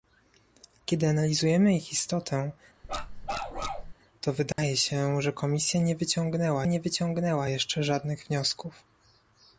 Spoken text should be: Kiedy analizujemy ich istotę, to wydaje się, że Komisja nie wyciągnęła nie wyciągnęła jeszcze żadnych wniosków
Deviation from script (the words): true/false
false